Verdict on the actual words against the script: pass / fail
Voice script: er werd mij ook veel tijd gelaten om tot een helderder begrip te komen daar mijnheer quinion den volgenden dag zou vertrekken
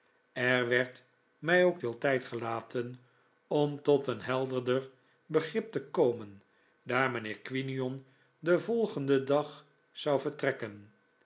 pass